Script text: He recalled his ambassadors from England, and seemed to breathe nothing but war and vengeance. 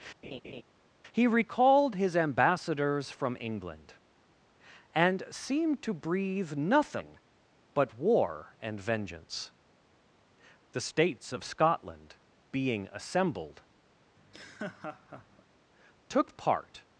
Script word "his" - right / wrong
right